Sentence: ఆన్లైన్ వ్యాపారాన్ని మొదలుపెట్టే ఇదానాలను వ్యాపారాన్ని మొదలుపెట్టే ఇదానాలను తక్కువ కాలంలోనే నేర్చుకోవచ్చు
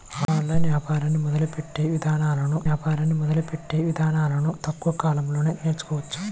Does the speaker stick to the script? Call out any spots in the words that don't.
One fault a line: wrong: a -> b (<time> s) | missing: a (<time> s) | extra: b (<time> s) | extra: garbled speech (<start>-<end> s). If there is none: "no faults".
no faults